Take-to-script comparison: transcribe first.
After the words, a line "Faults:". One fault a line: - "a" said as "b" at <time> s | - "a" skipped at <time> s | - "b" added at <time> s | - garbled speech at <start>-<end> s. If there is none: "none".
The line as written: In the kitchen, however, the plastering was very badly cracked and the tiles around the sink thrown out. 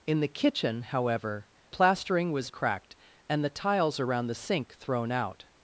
In the kitchen, however, plastering was cracked and the tiles around the sink thrown out.
Faults:
- "the" skipped at 1.5 s
- "very badly" skipped at 2.5 s